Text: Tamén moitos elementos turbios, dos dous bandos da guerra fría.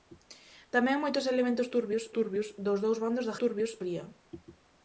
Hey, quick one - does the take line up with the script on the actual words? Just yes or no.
no